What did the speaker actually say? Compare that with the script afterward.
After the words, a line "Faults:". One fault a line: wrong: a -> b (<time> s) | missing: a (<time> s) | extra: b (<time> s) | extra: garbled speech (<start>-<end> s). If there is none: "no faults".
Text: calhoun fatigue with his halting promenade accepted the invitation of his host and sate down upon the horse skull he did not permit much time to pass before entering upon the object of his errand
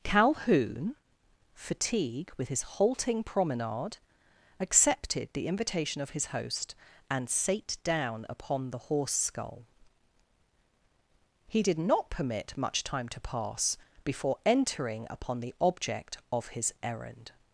calhoun fatigue with his halting promenade accepted the invitation of his host and sate down upon the horse skull he did not permit much time to pass before entering upon the object of his errand
Faults:
no faults